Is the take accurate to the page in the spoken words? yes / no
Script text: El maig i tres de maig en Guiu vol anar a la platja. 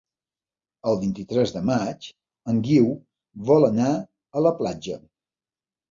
no